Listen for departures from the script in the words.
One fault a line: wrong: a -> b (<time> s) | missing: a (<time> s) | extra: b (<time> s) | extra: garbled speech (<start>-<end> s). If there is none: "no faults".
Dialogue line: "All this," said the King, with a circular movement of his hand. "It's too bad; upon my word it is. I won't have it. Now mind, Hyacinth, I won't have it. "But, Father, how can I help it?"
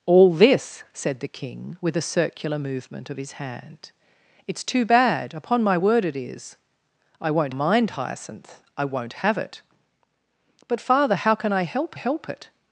missing: have it Now (7.5 s)
extra: help (11.9 s)